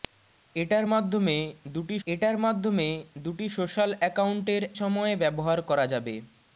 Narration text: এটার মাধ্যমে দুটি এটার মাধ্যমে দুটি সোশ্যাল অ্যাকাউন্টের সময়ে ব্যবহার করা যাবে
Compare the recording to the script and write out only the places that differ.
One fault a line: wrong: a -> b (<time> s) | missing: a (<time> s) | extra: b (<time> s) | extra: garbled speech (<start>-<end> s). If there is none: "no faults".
no faults